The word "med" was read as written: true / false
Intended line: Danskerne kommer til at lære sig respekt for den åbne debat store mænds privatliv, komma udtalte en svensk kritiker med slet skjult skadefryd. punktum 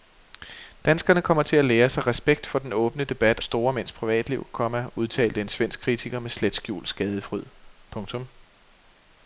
true